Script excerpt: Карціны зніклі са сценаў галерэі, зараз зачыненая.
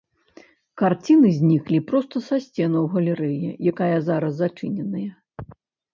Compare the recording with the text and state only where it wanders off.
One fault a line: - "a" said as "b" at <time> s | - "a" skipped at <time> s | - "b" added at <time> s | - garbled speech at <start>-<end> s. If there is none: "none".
- "проста" added at 1.9 s
- "якая" added at 3.7 s